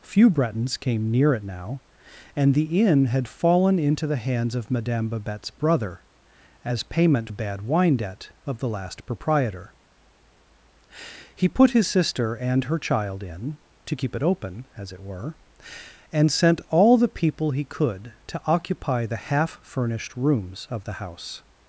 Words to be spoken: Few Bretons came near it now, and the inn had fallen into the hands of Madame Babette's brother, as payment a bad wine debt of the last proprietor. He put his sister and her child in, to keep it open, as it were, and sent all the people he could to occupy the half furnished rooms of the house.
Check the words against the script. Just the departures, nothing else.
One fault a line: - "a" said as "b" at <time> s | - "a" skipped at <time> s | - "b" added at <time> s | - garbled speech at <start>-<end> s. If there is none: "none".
none